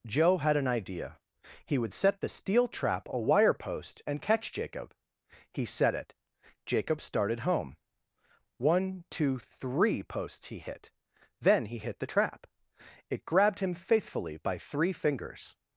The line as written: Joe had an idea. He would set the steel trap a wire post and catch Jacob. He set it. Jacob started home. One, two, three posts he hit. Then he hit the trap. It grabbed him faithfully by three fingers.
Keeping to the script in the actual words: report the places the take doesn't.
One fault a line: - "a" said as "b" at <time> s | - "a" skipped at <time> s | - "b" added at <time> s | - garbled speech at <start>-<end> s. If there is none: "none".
none